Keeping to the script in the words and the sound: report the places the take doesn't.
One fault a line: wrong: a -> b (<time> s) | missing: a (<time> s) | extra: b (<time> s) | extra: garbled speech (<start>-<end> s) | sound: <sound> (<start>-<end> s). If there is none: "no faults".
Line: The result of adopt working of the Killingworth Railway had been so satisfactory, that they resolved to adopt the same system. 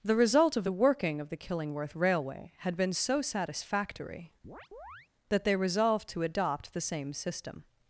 wrong: adopt -> the (0.6 s)
sound: chirp (4.4-5.1 s)